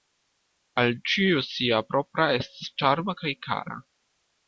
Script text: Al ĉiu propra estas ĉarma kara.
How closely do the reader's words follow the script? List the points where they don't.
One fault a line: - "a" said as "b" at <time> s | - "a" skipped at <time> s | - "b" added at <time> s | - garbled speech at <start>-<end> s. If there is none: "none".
- "sia" added at 1.5 s
- "kaj" added at 3.2 s